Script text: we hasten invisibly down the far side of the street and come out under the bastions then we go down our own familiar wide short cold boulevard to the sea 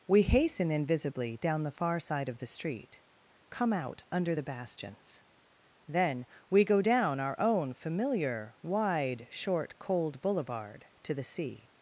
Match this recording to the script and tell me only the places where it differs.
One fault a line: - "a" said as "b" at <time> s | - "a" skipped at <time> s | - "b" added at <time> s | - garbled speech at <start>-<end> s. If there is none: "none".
- "and" skipped at 3.0 s